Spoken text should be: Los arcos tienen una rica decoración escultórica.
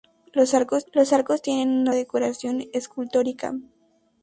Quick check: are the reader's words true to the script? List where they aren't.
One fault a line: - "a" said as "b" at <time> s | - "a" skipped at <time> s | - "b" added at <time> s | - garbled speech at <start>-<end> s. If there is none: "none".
- "los arcos" added at 0.9 s
- "rica" skipped at 1.9 s